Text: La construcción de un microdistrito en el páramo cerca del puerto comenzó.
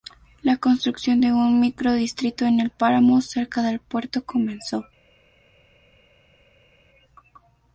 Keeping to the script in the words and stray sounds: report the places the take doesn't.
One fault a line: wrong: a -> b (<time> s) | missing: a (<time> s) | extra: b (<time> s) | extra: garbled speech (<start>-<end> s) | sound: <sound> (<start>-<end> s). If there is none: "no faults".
no faults